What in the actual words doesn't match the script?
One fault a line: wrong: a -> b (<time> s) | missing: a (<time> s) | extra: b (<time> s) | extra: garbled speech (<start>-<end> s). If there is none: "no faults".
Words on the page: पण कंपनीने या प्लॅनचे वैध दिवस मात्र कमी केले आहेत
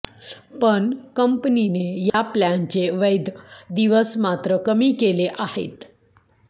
no faults